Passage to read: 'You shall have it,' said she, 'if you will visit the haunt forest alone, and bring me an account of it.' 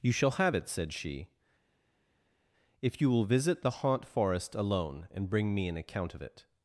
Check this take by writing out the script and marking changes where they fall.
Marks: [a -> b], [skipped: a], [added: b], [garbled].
'You shall have it,' said she, 'if you will visit the haunt forest alone, and bring me an account of it.'